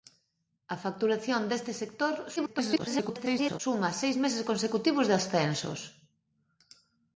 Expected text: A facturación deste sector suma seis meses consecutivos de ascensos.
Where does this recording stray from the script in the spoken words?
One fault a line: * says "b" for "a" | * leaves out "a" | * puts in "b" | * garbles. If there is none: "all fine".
* garbles